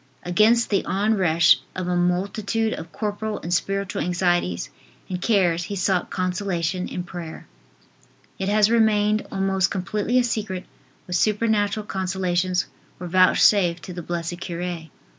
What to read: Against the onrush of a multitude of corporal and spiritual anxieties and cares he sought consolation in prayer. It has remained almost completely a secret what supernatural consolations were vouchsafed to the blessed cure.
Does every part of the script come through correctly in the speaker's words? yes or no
yes